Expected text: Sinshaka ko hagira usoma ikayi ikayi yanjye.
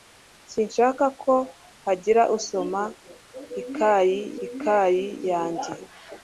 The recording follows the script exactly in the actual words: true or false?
true